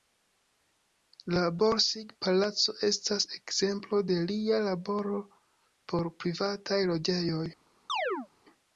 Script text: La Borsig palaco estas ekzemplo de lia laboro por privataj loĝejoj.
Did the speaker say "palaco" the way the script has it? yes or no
yes